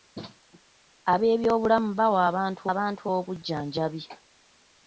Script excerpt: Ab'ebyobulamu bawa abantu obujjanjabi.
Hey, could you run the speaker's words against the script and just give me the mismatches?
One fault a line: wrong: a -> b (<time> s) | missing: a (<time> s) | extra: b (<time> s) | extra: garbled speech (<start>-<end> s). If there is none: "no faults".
extra: abantu (2.7 s)